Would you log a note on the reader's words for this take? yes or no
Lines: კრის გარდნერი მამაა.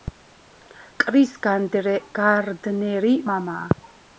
no